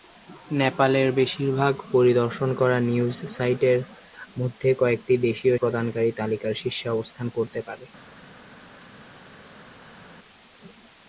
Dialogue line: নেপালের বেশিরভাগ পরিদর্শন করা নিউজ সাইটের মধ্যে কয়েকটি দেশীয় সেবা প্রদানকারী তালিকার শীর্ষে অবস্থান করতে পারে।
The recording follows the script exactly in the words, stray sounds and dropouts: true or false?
false